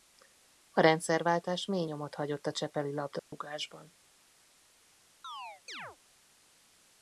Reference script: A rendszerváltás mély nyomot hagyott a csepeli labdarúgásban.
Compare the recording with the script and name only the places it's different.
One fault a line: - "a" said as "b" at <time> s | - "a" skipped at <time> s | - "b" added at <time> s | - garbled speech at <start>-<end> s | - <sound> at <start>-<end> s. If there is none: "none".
- dropout at 3.2-3.3 s
- chirp at 5.2-6.0 s